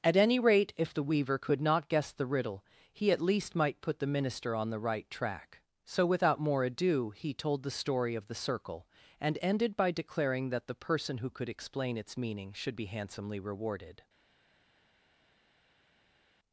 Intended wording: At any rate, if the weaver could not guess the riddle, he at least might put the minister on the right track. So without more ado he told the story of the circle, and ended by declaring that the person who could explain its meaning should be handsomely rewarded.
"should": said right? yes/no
yes